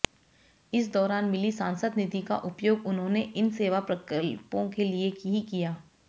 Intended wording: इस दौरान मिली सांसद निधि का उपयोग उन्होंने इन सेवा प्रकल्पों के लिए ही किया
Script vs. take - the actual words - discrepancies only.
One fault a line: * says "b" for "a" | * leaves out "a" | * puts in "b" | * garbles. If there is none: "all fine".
all fine